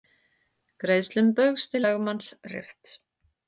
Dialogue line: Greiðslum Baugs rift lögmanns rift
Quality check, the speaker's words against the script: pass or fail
fail